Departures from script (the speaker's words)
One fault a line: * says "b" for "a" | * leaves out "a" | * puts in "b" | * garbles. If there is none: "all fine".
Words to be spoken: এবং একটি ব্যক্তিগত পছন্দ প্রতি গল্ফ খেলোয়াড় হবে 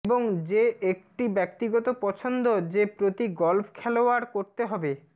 * puts in "যে"
* puts in "যে"
* puts in "করতে"